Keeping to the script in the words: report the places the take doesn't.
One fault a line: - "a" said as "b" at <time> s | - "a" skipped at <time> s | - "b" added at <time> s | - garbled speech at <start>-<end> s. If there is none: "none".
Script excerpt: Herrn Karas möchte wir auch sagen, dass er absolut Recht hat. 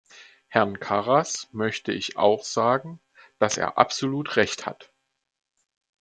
- "wir" said as "ich" at 1.9 s